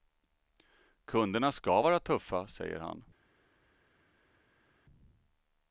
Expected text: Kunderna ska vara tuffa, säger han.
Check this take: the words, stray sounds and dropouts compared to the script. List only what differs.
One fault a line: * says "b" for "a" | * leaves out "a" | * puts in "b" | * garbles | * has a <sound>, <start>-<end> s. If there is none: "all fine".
all fine